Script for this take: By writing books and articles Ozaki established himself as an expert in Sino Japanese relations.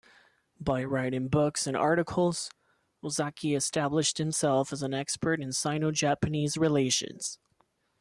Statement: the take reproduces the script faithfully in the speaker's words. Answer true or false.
true